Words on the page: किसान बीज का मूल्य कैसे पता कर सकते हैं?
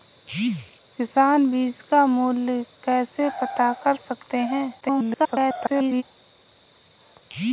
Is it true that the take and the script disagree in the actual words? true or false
true